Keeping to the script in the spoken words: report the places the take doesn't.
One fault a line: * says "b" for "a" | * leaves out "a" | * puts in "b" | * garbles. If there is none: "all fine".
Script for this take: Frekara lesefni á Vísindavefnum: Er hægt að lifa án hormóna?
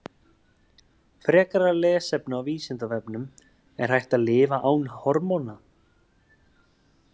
all fine